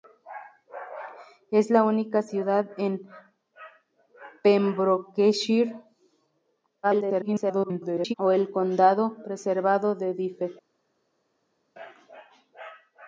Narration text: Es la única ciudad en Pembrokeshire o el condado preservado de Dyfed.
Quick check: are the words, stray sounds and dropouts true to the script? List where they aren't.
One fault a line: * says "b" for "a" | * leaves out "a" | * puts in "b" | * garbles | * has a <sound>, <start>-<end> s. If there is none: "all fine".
* garbles